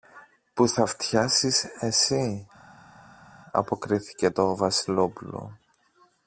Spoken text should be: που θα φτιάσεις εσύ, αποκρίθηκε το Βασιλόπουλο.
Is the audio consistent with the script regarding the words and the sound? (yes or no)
yes